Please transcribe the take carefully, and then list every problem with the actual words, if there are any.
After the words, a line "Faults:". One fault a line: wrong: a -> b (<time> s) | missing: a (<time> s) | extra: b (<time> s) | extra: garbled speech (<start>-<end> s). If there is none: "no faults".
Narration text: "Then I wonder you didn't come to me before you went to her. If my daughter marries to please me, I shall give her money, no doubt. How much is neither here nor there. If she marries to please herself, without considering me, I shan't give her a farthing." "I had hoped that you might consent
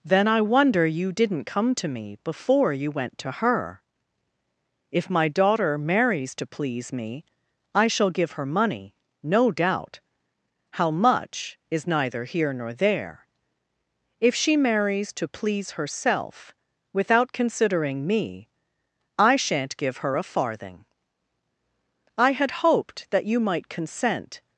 "Then I wonder you didn't come to me before you went to her. If my daughter marries to please me, I shall give her money, no doubt. How much is neither here nor there. If she marries to please herself, without considering me, I shan't give her a farthing." "I had hoped that you might consent
Faults:
no faults